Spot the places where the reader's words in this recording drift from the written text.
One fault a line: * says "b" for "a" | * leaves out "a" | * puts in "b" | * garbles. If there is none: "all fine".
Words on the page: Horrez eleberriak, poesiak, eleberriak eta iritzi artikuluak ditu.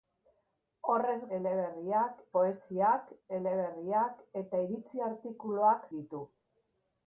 all fine